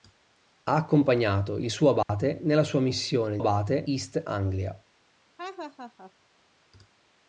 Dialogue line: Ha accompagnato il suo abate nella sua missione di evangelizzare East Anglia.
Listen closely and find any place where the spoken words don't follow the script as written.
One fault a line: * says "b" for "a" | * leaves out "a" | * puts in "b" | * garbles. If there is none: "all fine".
* says "abate" for "evangelizzare"